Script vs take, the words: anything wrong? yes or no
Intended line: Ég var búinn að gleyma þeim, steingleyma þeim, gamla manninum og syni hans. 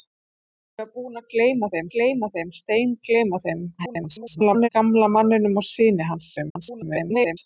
yes